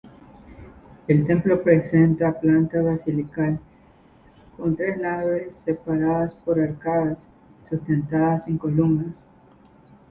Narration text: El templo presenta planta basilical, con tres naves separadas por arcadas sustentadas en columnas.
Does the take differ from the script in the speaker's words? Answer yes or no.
no